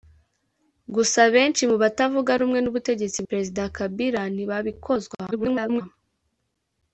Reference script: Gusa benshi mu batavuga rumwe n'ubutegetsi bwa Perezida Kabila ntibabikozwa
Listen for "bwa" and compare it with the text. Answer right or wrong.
wrong